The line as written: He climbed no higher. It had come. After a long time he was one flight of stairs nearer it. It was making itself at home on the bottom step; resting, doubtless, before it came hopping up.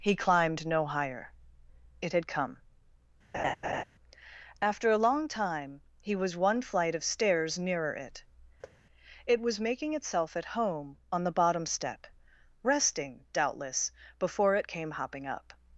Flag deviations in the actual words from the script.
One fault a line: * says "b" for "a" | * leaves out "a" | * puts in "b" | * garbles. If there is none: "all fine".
all fine